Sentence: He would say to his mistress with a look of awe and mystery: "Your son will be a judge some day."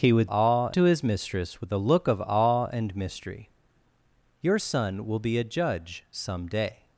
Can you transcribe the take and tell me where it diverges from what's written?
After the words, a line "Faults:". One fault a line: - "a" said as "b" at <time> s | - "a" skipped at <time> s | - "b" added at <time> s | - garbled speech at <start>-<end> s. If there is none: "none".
He would awe to his mistress with a look of awe and mystery: "Your son will be a judge some day."
Faults:
- "say" said as "awe" at 0.2 s